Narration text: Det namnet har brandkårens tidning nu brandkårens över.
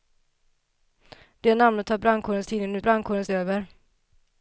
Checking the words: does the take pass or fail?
pass